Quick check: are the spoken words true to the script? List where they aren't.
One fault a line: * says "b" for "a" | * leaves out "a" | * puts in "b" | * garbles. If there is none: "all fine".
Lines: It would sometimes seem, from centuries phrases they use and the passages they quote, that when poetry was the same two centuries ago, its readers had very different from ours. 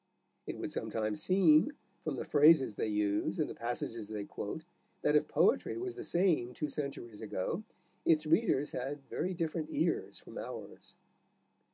* says "the" for "centuries"
* says "if" for "when"
* puts in "ears"